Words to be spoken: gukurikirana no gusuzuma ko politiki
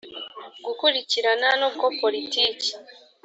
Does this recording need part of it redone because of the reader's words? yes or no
yes